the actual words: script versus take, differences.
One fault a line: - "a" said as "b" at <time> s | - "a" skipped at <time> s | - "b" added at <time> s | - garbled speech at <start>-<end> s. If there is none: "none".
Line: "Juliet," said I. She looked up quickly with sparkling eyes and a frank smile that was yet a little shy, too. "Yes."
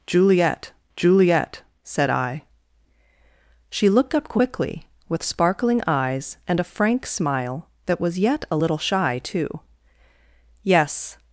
- "juliet" added at 1.0 s